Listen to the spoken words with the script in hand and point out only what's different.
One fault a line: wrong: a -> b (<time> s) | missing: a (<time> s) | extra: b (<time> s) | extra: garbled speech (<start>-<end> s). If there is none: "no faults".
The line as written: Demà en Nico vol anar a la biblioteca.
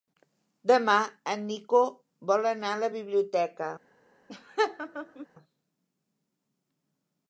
no faults